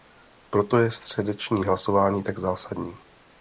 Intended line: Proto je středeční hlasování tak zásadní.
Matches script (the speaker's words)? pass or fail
pass